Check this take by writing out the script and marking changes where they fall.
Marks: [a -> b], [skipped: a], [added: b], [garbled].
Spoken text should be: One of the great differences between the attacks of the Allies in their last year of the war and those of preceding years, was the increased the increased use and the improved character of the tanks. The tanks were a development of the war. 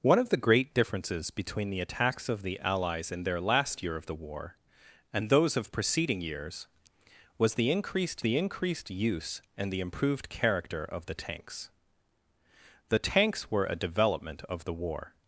One of the great differences between the attacks of the Allies in their last year of the war and those of preceding years, was the increased the increased use and the improved character of the tanks. The tanks were a development of the war.